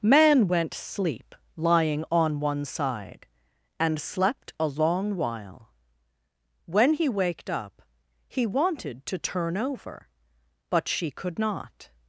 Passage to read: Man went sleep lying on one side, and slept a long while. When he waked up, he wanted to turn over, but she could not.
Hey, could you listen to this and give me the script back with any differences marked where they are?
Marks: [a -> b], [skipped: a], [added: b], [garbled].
Man went sleep lying on one side, and slept a long while. When he waked up, he wanted to turn over, but she could not.